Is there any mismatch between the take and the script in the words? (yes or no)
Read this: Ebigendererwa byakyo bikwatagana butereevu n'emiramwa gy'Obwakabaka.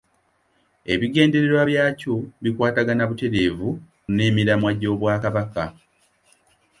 no